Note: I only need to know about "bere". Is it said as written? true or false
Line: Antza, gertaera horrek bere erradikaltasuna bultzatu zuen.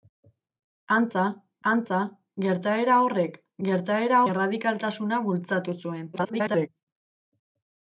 false